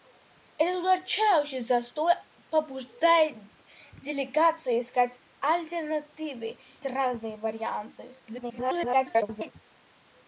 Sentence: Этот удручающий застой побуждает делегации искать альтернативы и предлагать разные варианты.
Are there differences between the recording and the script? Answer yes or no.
yes